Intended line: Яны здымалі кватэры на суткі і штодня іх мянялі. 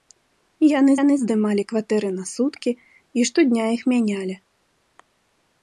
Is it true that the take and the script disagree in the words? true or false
true